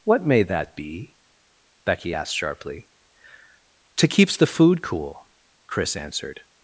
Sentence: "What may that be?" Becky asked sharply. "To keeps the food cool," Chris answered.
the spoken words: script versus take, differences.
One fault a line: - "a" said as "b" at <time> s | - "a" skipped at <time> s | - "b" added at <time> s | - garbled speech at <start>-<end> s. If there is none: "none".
none